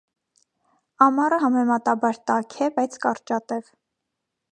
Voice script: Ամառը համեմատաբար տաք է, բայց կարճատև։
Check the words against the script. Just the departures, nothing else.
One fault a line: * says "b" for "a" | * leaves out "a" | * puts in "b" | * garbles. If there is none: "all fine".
all fine